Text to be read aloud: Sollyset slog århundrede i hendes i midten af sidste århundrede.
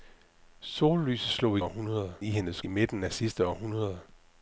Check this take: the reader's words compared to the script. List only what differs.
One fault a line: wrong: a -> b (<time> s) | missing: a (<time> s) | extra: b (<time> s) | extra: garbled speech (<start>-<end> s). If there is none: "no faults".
no faults